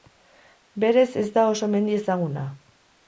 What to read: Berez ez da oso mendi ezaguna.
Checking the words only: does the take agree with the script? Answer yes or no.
yes